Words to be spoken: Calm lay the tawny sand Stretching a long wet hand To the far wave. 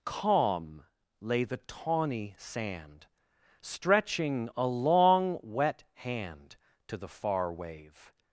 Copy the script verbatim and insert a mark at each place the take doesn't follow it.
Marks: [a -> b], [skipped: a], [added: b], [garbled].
Calm lay the tawny sand Stretching a long wet hand To the far wave.